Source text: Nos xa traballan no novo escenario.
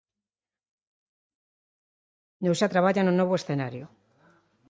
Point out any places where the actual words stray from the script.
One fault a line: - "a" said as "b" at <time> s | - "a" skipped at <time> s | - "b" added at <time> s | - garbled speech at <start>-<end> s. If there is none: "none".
none